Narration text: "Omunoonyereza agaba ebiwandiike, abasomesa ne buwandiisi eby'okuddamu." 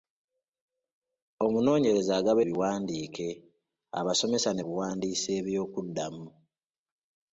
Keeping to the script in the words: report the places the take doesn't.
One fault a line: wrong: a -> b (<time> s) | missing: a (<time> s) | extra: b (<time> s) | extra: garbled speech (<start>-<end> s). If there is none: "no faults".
no faults